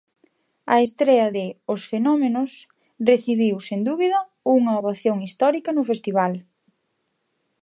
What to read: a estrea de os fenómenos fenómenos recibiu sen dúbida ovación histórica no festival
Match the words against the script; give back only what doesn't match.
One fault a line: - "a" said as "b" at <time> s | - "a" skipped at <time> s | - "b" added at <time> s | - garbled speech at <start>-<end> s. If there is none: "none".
- "fenómenos" skipped at 2.5 s
- "unha" added at 4.6 s